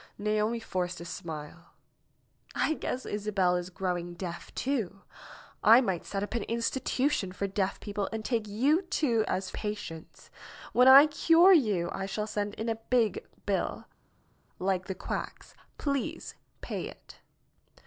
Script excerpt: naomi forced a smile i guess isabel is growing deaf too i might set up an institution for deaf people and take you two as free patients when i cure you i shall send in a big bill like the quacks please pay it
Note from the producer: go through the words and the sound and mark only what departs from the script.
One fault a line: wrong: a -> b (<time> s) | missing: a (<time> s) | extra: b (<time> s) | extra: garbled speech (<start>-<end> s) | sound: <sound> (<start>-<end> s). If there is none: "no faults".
missing: free (9.5 s)